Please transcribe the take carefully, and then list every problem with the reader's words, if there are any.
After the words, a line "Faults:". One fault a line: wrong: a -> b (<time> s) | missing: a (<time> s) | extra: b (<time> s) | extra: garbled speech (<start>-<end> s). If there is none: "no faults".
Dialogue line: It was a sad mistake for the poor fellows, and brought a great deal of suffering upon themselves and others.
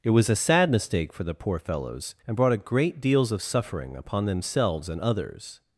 It was a sad mistake for the poor fellows, and brought a great deals of suffering upon themselves and others.
Faults:
wrong: deal -> deals (3.0 s)